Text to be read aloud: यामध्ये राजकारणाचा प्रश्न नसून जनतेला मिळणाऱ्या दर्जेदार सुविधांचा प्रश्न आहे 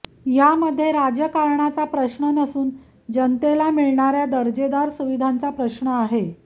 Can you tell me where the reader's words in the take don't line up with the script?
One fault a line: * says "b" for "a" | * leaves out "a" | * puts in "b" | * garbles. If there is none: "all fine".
all fine